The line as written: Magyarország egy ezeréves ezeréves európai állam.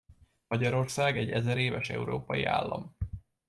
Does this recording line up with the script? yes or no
no